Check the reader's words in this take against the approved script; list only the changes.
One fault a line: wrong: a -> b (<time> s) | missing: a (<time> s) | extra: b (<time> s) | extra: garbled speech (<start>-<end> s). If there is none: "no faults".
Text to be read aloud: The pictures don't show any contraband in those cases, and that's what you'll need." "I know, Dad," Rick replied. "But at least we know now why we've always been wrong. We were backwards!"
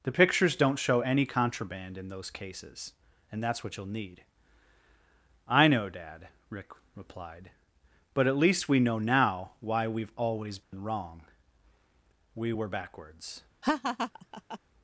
no faults